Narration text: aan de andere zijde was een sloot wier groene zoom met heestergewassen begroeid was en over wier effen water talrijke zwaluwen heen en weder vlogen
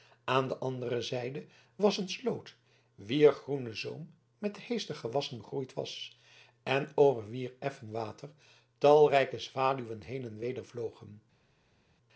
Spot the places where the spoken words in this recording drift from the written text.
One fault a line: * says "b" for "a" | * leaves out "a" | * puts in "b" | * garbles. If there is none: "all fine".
all fine